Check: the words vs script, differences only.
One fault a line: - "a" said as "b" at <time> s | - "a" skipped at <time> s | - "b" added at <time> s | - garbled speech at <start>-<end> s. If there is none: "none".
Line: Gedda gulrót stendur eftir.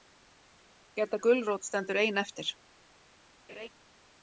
- "ein" added at 2.0 s